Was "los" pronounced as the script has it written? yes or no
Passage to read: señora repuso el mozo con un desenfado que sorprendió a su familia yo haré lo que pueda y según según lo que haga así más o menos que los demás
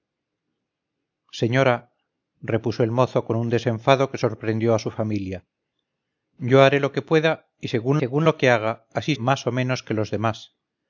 yes